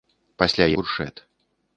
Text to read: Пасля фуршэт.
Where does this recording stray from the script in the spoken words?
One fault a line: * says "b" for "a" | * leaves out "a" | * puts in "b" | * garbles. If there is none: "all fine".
all fine